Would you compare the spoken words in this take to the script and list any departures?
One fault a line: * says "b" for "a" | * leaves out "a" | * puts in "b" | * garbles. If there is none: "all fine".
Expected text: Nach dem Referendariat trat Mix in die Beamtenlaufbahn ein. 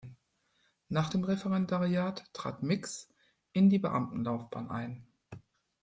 all fine